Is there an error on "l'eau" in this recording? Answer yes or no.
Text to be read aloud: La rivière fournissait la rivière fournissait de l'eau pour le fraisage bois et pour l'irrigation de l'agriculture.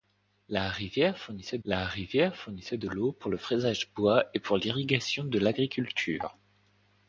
no